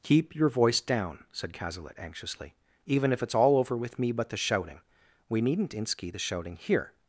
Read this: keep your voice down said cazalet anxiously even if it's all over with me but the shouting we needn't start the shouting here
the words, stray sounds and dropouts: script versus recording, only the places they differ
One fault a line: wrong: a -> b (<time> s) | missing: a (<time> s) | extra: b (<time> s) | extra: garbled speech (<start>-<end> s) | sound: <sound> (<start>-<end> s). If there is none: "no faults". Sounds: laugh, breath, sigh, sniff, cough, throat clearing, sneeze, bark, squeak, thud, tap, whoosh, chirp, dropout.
wrong: start -> inski (5.7 s)